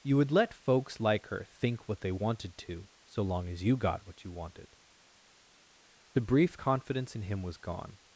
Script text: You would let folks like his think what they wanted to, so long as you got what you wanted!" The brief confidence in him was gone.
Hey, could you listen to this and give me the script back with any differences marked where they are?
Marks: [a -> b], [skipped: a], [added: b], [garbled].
You would let folks like [his -> her] think what they wanted to, so long as you got what you wanted!" The brief confidence in him was gone.